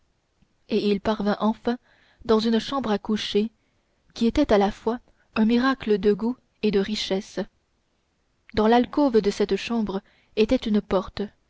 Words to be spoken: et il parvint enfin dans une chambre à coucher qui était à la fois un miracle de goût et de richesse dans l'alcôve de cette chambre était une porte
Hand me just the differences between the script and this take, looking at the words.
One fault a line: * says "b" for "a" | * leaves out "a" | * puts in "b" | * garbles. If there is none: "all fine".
all fine